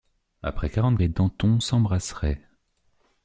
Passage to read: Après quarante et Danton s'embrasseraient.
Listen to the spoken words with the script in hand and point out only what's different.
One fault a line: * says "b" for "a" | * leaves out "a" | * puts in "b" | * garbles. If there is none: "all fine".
all fine